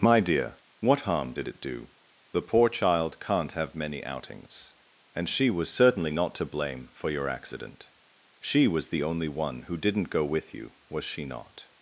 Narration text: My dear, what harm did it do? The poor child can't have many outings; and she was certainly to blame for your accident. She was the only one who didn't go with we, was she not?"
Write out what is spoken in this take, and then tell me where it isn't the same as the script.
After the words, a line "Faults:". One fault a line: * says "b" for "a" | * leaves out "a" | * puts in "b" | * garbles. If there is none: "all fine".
My dear, what harm did it do? The poor child can't have many outings; and she was certainly not to blame for your accident. She was the only one who didn't go with you, was she not?"
Faults:
* puts in "not"
* says "you" for "we"